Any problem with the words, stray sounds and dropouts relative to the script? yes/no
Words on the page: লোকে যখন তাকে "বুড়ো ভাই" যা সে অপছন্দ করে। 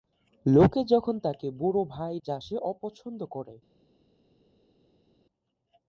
no